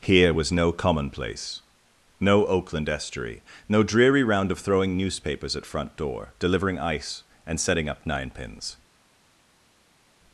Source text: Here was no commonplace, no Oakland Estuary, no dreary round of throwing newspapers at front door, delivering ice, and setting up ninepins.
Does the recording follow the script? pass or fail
pass